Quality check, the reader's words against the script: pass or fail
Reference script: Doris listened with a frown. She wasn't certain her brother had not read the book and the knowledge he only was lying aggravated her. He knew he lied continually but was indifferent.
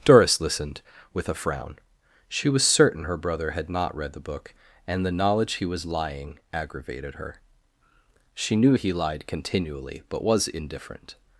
fail